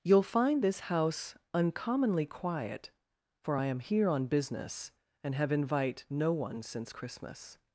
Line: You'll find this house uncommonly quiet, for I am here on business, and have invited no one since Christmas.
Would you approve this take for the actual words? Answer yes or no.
no